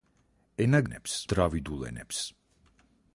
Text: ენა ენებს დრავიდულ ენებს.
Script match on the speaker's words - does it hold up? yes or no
yes